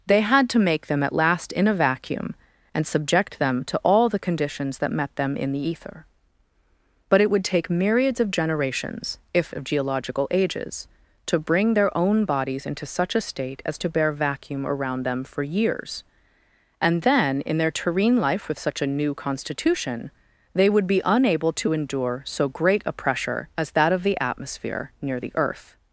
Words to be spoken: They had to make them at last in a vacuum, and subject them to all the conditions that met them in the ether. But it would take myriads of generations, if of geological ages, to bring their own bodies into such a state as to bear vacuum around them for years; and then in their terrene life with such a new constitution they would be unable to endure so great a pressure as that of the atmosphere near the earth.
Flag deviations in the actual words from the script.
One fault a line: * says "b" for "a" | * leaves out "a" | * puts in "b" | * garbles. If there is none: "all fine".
all fine